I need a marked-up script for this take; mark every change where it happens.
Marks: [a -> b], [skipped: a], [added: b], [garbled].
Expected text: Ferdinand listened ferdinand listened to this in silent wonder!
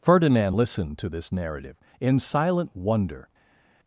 Ferdinand listened [skipped: ferdinand listened] to this [added: narrative] in silent wonder!